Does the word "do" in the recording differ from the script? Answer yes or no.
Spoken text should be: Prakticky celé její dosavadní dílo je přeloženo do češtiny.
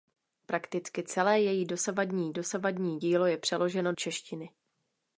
yes